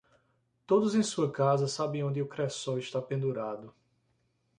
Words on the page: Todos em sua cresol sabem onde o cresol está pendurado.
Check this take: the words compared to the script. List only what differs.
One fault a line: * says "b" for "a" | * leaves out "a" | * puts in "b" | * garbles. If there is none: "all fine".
* says "casa" for "cresol"